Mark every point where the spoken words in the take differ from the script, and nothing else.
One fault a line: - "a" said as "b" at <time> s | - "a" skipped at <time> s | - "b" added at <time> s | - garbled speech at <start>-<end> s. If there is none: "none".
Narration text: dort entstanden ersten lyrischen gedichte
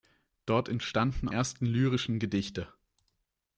none